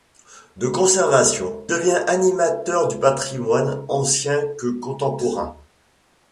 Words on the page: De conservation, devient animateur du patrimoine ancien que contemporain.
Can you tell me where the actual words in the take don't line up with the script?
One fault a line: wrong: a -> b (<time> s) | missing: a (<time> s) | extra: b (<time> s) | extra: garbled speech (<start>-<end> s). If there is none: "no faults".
no faults